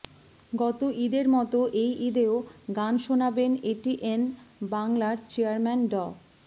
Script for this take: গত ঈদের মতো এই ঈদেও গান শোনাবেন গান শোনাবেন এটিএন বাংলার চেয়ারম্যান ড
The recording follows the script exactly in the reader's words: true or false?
false